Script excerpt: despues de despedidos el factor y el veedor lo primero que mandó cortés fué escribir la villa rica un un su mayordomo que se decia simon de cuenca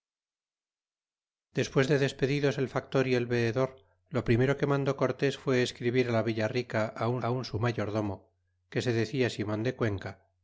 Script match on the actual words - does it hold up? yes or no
yes